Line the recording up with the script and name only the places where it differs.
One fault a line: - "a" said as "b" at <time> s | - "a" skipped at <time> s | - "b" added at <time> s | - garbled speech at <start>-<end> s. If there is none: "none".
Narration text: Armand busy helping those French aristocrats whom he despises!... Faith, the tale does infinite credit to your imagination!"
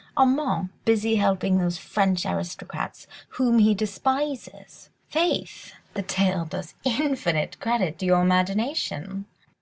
none